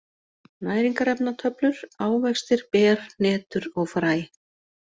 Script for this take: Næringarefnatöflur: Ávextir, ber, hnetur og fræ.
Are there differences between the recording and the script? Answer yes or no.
no